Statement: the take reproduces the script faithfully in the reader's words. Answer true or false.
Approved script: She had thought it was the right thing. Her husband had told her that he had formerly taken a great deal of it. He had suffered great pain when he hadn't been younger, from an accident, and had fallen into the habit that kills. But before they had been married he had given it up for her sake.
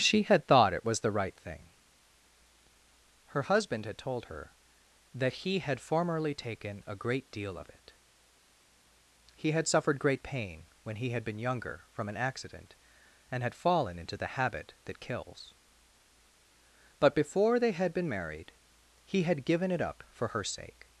false